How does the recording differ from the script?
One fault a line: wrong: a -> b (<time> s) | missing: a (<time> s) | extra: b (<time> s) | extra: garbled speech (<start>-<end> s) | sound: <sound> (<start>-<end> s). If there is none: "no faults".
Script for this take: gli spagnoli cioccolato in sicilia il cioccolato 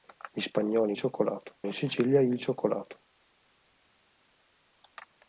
no faults